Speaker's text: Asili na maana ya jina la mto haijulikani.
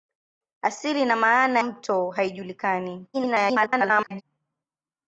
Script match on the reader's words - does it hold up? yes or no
no